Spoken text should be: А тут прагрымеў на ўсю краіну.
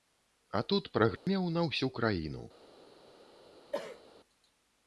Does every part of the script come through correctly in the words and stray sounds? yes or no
no